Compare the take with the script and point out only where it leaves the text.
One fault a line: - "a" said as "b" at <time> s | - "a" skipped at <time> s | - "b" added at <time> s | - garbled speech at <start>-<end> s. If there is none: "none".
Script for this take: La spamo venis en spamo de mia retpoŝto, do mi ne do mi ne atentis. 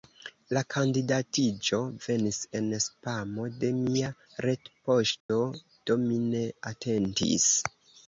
- "spamo" said as "kandidatiĝo" at 0.8 s
- "do mi ne" skipped at 6.5 s